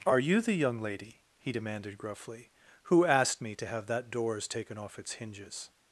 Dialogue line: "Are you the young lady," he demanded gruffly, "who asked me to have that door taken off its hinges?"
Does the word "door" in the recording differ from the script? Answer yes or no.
yes